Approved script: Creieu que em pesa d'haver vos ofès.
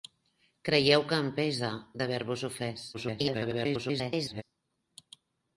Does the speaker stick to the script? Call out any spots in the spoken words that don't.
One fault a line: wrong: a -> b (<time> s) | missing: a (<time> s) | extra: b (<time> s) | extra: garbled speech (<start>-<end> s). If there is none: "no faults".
extra: garbled speech (2.9-4.4 s)